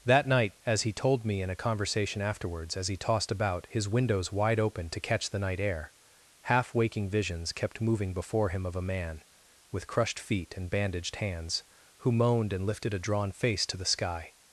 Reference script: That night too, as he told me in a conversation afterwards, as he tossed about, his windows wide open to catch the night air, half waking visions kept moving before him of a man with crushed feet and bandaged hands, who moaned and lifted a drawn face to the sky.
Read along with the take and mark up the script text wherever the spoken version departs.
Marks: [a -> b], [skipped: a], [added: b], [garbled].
That night [skipped: too,] as he told me in a conversation afterwards, as he tossed about, his windows wide open to catch the night air, half waking visions kept moving before him of a man with crushed feet and bandaged hands, who moaned and lifted a drawn face to the sky.